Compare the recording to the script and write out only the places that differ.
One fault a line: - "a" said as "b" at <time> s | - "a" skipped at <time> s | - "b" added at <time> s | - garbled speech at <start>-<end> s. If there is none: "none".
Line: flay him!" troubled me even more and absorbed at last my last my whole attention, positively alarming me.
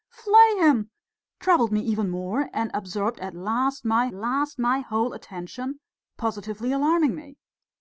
none